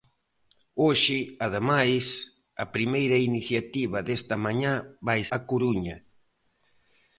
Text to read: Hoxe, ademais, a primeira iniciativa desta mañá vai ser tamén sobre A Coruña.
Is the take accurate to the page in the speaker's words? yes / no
no